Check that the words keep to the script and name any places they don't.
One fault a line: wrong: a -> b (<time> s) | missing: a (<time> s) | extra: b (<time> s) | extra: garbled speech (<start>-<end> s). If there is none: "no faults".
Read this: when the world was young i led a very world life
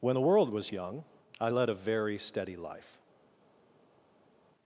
wrong: world -> steady (2.2 s)